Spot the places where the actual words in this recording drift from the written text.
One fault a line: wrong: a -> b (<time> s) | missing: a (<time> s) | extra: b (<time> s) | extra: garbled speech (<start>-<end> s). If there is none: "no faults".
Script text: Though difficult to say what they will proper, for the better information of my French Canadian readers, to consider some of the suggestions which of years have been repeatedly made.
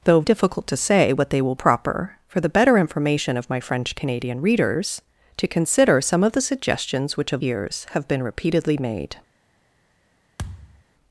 no faults